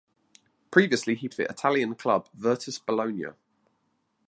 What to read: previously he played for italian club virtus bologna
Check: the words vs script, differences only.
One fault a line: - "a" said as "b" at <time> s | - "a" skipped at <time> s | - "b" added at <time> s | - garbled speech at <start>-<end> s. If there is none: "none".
- "played" skipped at 1.3 s